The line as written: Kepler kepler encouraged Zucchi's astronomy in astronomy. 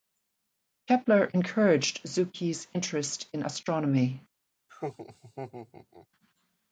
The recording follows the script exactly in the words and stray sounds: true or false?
false